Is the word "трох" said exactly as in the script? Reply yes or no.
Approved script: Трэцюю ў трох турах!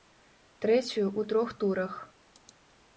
yes